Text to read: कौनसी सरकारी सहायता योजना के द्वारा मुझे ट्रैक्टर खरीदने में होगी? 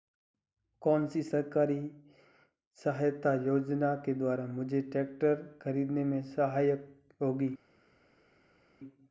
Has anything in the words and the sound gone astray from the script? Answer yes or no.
yes